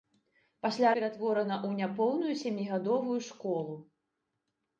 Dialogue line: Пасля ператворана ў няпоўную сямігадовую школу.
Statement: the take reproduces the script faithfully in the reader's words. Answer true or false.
true